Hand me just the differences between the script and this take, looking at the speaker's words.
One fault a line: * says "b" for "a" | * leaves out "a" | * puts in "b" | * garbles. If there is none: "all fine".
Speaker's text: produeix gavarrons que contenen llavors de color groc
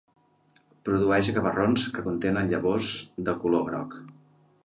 all fine